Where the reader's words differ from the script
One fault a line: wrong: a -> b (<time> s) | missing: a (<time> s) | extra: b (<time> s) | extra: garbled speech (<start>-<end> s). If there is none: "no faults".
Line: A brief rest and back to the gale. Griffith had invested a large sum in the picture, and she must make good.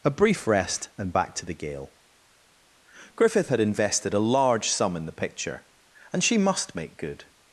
no faults